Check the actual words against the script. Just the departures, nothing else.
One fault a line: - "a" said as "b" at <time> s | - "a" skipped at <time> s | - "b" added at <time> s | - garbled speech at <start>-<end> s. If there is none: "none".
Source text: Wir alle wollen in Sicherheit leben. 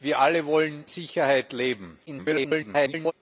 - "in" skipped at 0.8 s
- garbled speech at 2.1-3.1 s